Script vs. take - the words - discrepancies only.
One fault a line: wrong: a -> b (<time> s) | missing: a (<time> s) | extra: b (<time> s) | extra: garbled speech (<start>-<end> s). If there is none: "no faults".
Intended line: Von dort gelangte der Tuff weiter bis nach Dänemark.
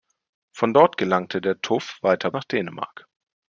missing: bis (2.3 s)